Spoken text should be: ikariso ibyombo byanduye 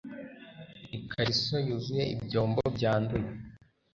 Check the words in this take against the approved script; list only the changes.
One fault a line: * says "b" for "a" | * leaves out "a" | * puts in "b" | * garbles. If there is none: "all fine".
* puts in "yuzuye"